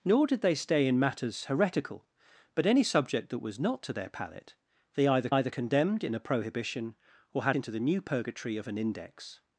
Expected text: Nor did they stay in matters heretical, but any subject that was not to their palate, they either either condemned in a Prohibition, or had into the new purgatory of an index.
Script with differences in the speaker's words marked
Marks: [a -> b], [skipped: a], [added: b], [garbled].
Nor did they stay in matters heretical, but any subject that was not to their palate, they either either condemned in a Prohibition, or had into the new purgatory of an index.